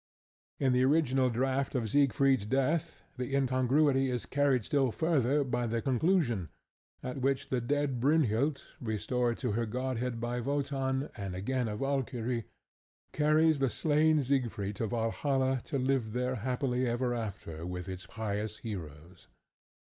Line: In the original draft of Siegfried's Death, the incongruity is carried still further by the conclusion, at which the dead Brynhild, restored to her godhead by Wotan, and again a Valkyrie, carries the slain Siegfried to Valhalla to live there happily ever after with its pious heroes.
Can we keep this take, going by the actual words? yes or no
yes